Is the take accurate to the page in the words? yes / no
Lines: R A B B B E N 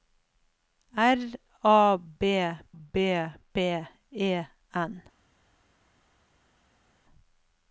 yes